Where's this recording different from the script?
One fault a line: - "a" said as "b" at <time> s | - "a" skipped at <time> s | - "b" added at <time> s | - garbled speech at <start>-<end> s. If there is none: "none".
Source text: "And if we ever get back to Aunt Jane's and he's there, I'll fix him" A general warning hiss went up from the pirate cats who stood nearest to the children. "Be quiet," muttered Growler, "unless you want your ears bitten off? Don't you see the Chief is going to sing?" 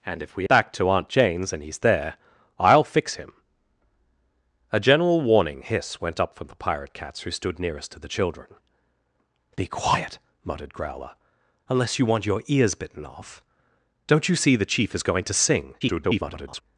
- "ever get" skipped at 0.5 s
- garbled speech at 15.8-16.6 s